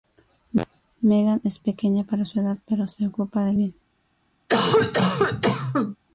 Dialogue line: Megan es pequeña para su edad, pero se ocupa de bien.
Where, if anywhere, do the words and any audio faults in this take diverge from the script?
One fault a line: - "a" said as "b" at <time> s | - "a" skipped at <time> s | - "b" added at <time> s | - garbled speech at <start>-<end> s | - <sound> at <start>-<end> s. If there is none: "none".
- cough at 4.5-6.0 s